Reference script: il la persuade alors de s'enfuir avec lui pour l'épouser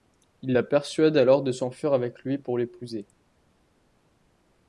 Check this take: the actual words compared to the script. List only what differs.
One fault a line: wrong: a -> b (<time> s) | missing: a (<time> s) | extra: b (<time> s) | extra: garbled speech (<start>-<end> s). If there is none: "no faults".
no faults